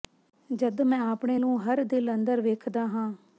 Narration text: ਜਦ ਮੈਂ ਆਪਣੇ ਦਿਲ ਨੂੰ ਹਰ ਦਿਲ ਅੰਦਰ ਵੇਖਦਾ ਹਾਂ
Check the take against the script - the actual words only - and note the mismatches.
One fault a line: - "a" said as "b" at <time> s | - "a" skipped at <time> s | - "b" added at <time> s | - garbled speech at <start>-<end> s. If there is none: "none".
- "ਦਿਲ" skipped at 1.4 s